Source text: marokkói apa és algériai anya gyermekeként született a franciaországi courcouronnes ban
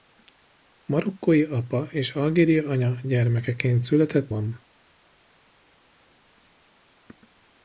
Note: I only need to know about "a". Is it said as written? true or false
false